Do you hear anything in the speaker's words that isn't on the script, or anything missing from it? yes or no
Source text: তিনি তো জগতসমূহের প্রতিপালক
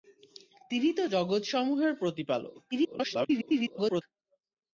yes